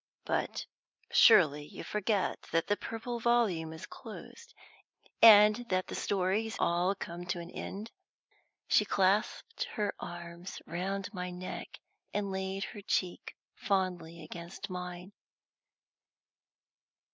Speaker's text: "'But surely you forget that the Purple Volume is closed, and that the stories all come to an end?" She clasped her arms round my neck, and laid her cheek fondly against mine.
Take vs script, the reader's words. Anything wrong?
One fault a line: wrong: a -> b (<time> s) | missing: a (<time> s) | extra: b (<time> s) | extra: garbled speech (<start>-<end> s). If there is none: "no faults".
no faults